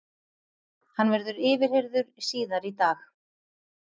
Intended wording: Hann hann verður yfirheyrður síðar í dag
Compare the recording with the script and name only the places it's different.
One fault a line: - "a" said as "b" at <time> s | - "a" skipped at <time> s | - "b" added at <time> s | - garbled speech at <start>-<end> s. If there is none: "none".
- "hann" skipped at 1.1 s